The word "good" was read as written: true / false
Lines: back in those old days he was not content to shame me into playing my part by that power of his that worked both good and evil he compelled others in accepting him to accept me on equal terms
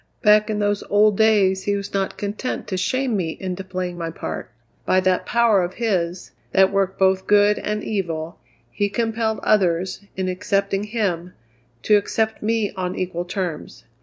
true